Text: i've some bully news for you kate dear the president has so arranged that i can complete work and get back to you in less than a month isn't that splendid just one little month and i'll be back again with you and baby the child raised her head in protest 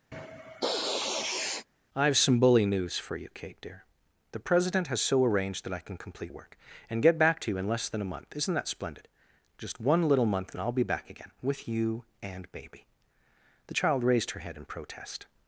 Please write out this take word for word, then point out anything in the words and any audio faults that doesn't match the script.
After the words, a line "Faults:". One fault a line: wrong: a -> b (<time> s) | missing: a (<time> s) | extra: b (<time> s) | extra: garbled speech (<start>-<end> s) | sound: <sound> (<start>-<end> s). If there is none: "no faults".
i've some bully news for you kate dear the president has so arranged that i can complete work and get back to you in less than a month isn't that splendid just one little month and i'll be back again with you and baby the child raised her head in protest
Faults:
sound: sniff (0.1-1.7 s)